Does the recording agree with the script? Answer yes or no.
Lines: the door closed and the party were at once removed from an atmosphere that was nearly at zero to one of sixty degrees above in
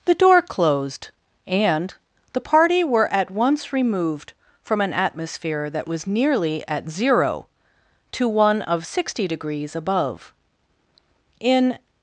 yes